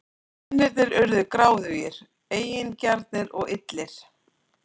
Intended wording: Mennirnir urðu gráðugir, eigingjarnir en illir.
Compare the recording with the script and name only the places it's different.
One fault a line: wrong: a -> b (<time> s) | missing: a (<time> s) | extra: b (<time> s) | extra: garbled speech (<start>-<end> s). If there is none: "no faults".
wrong: en -> og (3.4 s)